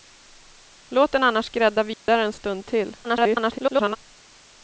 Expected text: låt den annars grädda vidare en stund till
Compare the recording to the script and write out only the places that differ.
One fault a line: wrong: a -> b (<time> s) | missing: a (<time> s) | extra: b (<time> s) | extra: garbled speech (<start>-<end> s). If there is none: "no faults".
extra: garbled speech (3.0-4.0 s)